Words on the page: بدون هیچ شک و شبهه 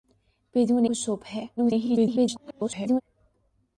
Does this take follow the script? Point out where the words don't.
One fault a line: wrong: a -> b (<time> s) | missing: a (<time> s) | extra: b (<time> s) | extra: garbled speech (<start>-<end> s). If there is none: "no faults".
missing: هیچ شک (0.8 s)
extra: garbled speech (1.6-3.0 s)